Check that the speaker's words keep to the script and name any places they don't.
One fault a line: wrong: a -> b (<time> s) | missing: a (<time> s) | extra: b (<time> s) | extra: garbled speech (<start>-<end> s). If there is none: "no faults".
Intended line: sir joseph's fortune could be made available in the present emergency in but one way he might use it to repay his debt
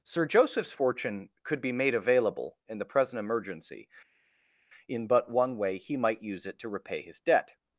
no faults